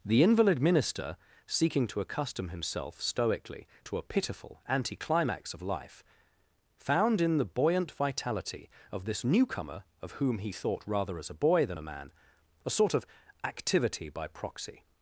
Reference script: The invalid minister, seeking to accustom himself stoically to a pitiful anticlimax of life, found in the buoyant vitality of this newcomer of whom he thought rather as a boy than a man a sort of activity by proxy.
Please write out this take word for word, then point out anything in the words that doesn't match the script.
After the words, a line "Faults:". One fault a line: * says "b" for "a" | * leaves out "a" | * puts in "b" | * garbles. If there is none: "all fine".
The invalid minister, seeking to accustom himself stoically to a pitiful anticlimax of life, found in the buoyant vitality of this newcomer of whom he thought rather as a boy than a man a sort of activity by proxy.
Faults:
all fine